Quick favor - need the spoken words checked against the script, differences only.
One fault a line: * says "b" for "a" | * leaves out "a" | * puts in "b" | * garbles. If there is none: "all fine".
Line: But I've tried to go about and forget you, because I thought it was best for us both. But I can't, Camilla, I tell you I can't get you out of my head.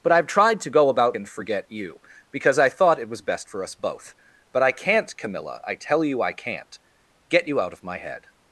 all fine